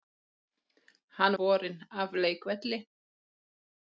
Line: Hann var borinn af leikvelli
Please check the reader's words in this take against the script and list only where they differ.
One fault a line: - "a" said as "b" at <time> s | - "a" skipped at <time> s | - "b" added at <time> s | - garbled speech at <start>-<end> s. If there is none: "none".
- "var" skipped at 1.4 s